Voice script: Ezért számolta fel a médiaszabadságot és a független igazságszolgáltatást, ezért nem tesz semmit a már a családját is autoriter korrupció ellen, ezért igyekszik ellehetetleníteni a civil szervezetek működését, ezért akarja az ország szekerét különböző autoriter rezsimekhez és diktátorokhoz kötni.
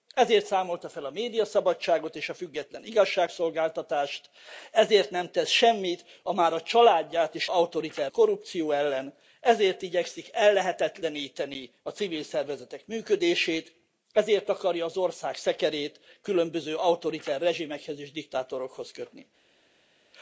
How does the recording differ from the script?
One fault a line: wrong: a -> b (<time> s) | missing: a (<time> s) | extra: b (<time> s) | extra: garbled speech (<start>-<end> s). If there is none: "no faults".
no faults